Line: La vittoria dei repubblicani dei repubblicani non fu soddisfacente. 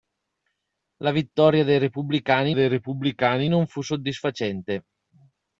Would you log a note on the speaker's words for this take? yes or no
no